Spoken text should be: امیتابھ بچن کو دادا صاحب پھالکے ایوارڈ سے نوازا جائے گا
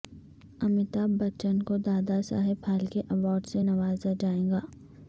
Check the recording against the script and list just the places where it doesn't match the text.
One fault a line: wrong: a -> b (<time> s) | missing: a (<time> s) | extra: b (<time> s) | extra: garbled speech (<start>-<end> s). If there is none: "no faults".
no faults